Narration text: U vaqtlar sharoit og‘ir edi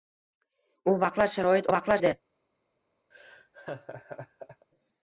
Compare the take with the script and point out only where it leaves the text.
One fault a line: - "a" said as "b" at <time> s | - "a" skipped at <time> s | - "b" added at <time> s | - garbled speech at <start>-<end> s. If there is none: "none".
- "og‘ir" said as "vaqtlar" at 1.7 s